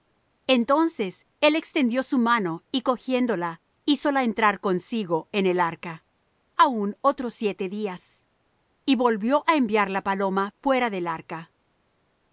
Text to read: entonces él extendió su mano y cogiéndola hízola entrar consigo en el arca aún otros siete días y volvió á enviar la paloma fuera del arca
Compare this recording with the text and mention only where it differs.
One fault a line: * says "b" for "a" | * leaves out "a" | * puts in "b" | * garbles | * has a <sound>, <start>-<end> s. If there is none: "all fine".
all fine